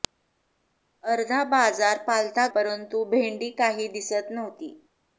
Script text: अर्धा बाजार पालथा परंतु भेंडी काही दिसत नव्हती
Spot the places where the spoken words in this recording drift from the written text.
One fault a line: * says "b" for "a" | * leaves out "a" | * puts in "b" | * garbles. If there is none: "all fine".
all fine